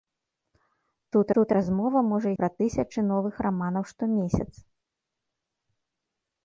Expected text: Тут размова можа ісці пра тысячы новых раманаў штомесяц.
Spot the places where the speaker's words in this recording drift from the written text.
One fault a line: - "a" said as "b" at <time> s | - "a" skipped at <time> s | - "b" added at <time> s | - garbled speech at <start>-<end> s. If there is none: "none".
- "тут" added at 1.4 s
- "ісці" skipped at 2.3 s